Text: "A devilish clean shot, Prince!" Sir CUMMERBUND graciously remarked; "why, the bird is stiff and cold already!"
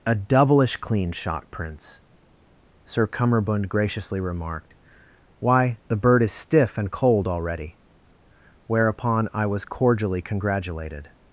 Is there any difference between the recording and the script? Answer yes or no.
yes